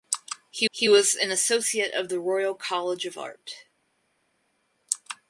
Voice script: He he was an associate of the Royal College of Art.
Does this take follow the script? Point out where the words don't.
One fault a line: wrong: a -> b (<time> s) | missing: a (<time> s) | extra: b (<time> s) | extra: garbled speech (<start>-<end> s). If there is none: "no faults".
no faults